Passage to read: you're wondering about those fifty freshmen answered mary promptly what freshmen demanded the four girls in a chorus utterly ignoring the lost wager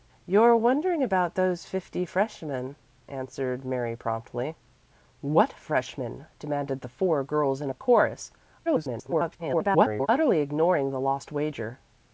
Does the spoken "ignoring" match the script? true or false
true